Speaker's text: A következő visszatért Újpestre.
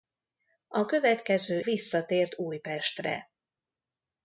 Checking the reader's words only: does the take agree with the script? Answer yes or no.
yes